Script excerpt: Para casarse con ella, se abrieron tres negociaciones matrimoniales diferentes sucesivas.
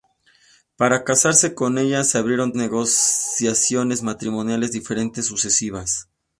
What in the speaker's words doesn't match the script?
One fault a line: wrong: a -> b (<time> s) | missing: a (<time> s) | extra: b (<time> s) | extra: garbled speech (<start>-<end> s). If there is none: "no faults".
missing: tres (2.5 s)